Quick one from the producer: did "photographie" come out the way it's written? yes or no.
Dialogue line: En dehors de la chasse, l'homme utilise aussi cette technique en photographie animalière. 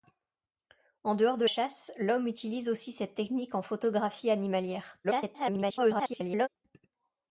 yes